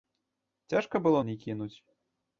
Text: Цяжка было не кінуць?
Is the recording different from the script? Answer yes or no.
no